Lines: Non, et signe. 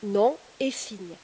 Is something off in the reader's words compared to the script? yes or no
no